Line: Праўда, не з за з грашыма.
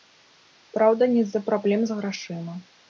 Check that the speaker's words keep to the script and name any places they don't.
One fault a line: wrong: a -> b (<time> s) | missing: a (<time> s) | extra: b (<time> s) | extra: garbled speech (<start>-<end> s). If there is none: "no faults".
extra: праблем (1.5 s)